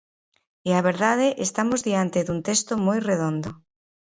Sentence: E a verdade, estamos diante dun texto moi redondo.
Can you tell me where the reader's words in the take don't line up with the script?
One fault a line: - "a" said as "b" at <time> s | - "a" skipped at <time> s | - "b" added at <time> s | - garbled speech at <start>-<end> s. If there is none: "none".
none